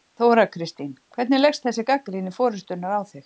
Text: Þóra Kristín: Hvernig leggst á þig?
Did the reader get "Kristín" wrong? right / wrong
right